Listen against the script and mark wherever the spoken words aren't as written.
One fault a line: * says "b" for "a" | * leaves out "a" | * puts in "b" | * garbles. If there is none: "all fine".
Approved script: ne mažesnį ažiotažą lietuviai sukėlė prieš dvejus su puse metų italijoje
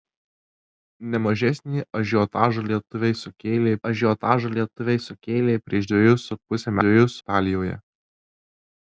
* puts in "ažiotažą lietuviai sukėlė"
* says "dvejus" for "metų"